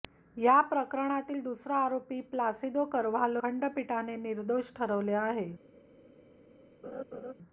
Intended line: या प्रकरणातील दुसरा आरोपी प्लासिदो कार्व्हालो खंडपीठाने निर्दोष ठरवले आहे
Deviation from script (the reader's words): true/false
false